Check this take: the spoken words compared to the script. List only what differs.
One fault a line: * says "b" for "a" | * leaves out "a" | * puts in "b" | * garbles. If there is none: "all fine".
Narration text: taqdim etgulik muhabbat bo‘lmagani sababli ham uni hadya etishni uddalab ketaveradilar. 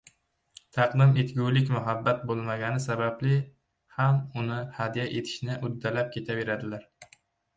all fine